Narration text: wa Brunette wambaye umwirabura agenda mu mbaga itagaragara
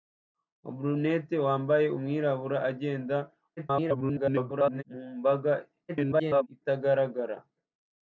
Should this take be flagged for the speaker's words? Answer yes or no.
yes